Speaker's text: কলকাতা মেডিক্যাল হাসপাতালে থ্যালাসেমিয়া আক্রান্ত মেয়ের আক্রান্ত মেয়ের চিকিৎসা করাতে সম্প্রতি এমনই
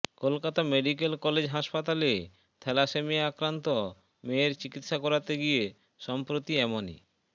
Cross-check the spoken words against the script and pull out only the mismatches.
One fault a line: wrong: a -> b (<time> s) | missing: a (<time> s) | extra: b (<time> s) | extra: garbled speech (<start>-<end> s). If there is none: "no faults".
extra: কলেজ (1.2 s)
missing: আক্রান্ত মেয়ের (4.5 s)
extra: গিয়ে (5.4 s)